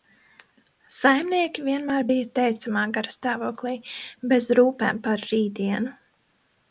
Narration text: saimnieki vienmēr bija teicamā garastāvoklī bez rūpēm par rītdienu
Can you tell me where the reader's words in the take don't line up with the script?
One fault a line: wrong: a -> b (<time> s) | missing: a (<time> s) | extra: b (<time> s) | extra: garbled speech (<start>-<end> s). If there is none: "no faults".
no faults